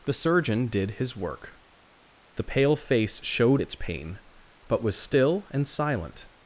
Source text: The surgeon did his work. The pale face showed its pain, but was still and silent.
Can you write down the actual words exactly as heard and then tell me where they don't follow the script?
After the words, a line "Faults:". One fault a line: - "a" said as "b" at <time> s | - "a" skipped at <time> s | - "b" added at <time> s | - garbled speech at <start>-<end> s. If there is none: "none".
The surgeon did his work. The pale face showed its pain, but was still and silent.
Faults:
none